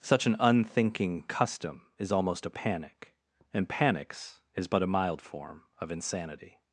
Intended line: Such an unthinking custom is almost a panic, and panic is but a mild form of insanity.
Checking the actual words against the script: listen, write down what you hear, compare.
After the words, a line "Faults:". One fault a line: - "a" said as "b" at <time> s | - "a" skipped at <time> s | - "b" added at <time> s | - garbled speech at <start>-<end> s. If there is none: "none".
Such an unthinking custom is almost a panic, and panics is but a mild form of insanity.
Faults:
- "panic" said as "panics" at 3.7 s